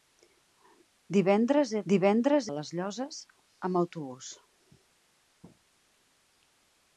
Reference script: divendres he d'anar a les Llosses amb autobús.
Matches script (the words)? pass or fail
fail